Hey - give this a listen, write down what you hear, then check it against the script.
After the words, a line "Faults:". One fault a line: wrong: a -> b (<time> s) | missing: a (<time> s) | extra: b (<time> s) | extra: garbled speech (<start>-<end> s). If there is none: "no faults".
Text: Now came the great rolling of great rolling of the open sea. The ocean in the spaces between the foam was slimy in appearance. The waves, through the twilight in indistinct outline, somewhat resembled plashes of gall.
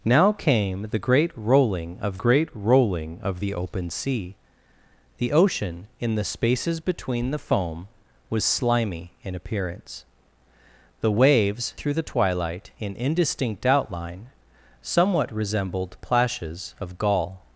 Now came the great rolling of great rolling of the open sea. The ocean in the spaces between the foam was slimy in appearance. The waves, through the twilight in indistinct outline, somewhat resembled plashes of gall.
Faults:
no faults